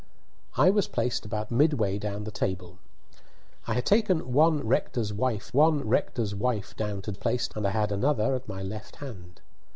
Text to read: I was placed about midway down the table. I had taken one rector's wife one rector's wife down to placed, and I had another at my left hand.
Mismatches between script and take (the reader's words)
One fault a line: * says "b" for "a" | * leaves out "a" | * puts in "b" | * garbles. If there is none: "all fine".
all fine